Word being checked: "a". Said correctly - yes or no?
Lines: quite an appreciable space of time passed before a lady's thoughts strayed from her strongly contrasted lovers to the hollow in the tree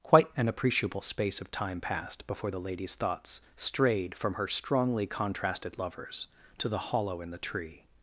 no